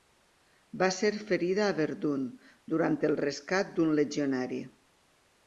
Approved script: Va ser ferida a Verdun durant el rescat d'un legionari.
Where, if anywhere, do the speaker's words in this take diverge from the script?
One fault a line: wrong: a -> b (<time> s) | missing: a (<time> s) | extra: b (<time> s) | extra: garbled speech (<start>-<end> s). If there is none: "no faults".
no faults